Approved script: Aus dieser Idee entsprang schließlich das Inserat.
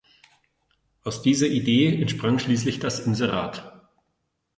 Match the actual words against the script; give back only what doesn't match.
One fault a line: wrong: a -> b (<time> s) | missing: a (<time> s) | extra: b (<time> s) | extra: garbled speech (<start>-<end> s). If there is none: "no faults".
no faults